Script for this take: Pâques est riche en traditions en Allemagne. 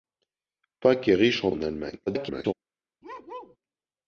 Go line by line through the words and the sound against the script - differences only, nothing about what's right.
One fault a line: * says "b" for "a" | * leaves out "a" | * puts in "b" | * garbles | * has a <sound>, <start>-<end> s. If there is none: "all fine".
* leaves out "traditions"
* garbles
* has a bark, 3.0-3.6 s